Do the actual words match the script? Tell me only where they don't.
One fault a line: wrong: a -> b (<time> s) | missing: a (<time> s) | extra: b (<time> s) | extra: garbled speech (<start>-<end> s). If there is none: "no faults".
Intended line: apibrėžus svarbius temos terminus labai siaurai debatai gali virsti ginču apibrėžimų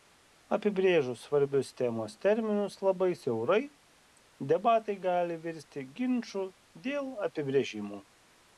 extra: dėl (6.9 s)